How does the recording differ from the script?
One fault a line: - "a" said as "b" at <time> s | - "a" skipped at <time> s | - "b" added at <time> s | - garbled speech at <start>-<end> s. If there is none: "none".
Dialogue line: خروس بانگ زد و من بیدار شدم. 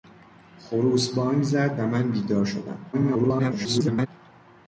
- garbled speech at 2.9-4.1 s